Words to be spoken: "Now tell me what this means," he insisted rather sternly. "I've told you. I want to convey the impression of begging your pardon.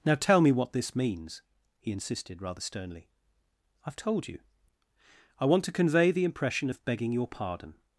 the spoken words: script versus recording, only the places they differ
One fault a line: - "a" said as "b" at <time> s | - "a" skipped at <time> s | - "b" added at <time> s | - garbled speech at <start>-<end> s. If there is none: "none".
none